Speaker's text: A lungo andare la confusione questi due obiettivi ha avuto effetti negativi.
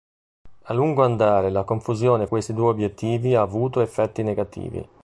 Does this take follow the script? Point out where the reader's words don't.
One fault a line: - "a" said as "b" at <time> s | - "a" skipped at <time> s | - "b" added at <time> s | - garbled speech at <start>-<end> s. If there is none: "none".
none